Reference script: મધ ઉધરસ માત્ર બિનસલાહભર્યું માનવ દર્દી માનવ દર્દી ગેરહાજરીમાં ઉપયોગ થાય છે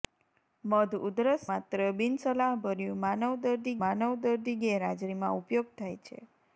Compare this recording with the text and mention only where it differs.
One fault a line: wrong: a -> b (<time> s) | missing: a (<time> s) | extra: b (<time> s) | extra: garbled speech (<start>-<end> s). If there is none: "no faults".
no faults